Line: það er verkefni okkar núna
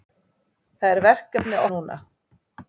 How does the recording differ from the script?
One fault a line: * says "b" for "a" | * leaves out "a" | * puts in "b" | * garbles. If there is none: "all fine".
* leaves out "okkar"